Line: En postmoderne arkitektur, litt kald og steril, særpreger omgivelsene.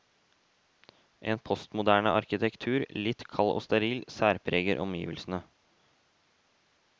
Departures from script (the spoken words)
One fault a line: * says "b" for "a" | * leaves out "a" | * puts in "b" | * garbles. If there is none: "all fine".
all fine